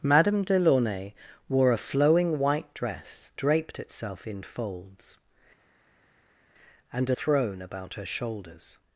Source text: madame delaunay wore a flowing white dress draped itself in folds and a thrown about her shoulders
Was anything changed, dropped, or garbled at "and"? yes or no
no